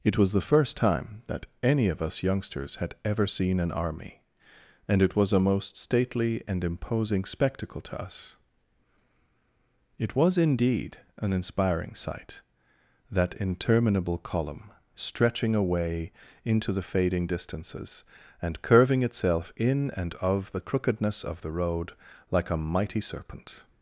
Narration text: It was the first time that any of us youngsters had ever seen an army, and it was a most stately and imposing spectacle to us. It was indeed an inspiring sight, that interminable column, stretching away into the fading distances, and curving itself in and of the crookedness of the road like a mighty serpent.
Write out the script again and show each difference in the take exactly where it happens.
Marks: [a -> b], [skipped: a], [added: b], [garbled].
It was the first time that any of us youngsters had ever seen an army, and it was a most stately and imposing spectacle to us. It was indeed an inspiring sight, that interminable column, stretching away into the fading distances, and curving itself in and of the crookedness of the road like a mighty serpent.